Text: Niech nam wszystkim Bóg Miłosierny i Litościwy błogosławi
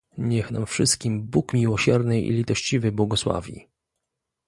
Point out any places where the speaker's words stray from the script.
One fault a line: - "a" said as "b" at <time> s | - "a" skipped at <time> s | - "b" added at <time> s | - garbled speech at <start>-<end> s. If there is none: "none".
none